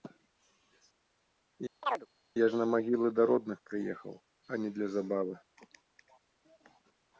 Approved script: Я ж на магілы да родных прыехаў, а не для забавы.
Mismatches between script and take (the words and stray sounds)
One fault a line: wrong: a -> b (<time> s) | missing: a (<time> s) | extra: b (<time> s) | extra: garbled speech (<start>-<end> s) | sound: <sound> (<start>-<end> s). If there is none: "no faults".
sound: chirp (1.8-2.1 s)